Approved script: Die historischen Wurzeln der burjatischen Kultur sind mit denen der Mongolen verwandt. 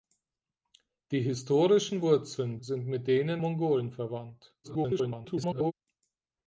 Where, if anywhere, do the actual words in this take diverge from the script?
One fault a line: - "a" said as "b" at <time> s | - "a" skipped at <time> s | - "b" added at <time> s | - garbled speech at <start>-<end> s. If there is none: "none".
- "der burjatischen Kultur" skipped at 2.6 s
- "der" skipped at 3.4 s
- garbled speech at 4.6-5.7 s